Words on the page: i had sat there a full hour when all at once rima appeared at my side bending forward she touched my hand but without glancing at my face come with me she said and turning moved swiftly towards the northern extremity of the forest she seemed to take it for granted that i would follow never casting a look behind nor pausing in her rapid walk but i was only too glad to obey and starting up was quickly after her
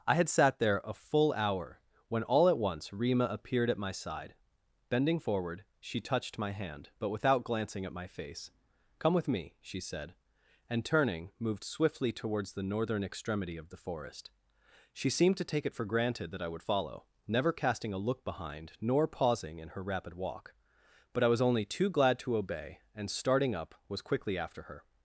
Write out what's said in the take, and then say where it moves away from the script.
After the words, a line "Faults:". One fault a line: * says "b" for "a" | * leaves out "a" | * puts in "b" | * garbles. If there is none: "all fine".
i had sat there a full hour when all at once rima appeared at my side bending forward she touched my hand but without glancing at my face come with me she said and turning moved swiftly towards the northern extremity of the forest she seemed to take it for granted that i would follow never casting a look behind nor pausing in her rapid walk but i was only too glad to obey and starting up was quickly after her
Faults:
all fine